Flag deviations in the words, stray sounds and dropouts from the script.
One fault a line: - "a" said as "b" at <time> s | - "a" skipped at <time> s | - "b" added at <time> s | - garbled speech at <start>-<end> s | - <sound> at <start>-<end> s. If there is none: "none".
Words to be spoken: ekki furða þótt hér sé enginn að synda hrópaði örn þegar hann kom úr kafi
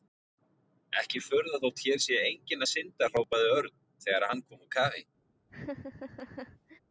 - laugh at 5.5-6.8 s